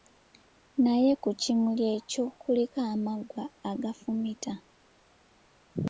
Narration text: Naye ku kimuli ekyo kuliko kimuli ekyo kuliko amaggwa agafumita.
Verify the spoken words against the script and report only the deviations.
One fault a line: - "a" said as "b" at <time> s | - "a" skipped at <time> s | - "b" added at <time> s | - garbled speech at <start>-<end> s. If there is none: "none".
- "kimuli ekyo kuliko" skipped at 2.8 s